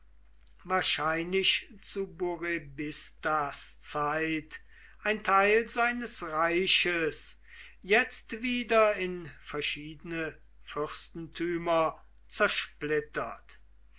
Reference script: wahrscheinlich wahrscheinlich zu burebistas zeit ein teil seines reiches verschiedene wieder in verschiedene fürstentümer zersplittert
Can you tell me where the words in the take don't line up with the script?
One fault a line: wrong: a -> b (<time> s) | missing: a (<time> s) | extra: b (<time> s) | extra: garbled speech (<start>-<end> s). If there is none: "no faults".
missing: wahrscheinlich (1.7 s)
wrong: verschiedene -> jetzt (7.8 s)